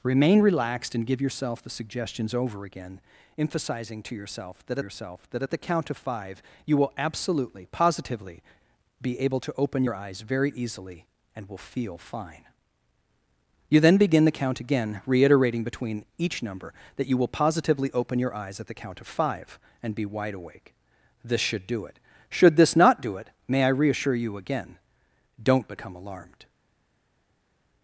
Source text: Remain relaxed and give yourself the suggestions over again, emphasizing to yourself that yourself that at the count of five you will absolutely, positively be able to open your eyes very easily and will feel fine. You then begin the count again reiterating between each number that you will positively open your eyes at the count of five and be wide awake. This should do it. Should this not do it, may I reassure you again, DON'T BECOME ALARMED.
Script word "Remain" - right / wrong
right